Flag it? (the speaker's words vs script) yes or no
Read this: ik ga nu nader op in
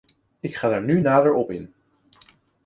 yes